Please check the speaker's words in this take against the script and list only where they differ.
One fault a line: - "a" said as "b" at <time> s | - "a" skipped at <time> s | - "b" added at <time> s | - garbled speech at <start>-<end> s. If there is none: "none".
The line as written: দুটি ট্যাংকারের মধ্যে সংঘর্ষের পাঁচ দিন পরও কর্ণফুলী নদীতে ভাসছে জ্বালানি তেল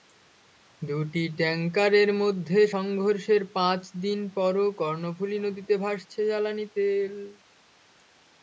none